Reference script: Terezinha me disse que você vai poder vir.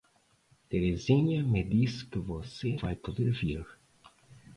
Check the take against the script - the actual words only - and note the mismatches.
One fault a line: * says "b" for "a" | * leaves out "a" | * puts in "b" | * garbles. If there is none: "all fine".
all fine